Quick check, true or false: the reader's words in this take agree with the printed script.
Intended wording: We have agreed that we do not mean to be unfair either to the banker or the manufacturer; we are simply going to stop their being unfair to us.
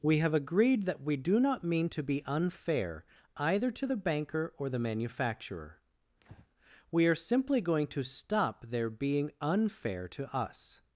true